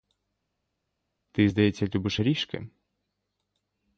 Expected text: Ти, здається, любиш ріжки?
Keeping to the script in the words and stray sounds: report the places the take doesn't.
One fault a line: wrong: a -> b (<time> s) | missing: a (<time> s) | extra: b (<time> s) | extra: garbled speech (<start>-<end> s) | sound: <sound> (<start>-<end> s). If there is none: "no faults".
no faults